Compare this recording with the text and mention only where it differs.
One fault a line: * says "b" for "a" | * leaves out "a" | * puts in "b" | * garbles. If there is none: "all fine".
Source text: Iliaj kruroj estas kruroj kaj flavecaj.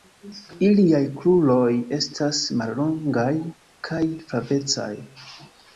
* says "mallongaj" for "kruroj"